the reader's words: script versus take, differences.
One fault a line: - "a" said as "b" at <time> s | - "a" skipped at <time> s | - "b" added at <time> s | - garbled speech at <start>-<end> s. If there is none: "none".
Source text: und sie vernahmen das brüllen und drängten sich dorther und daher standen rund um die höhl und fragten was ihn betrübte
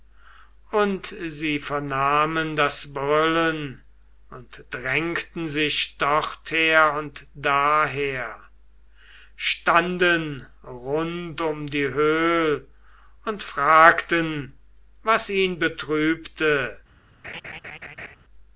none